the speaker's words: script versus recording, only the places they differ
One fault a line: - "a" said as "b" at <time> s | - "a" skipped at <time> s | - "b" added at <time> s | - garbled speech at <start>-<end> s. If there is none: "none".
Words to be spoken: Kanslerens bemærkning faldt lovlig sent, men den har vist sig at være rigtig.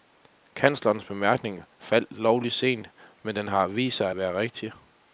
none